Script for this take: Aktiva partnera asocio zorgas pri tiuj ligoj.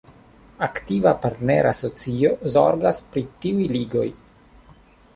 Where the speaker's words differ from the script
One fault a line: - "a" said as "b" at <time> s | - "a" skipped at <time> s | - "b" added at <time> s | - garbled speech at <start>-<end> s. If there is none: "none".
none